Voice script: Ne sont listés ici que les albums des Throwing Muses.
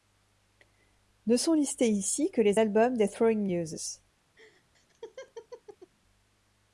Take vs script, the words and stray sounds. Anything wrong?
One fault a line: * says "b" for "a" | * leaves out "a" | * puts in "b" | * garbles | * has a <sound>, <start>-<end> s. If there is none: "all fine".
* has a laugh, 4.4-5.9 s